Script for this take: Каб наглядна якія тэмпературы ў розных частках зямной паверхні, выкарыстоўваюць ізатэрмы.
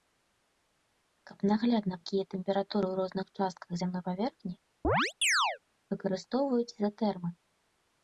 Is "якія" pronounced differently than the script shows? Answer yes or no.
no